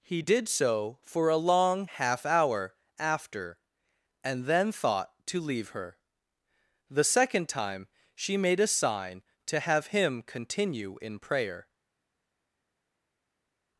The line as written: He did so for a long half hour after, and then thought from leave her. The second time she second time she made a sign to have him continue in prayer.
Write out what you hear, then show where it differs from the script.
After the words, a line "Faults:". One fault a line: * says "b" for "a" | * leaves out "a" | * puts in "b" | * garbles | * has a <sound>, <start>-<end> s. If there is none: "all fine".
He did so for a long half hour after, and then thought to leave her. The second time she made a sign to have him continue in prayer.
Faults:
* says "to" for "from"
* leaves out "second time she"